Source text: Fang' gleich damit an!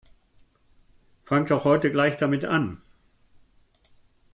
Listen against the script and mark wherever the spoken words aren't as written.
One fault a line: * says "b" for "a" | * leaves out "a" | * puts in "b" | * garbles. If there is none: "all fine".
* puts in "doch heute"